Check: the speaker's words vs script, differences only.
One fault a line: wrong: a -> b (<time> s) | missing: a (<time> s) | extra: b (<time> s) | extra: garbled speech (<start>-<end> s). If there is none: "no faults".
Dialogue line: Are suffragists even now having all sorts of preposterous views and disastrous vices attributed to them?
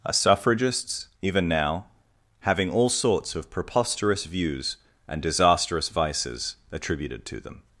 no faults